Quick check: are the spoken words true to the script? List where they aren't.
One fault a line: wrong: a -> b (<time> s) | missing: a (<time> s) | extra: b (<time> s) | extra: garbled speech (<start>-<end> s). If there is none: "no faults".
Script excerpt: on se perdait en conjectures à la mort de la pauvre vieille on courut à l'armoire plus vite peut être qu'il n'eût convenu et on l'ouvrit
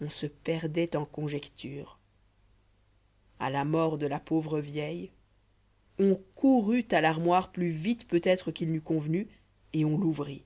no faults